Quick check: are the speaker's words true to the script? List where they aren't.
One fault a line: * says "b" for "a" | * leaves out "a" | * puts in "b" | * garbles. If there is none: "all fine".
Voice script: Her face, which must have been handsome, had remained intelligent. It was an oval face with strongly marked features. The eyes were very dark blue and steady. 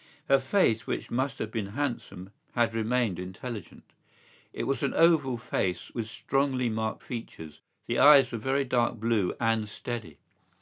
all fine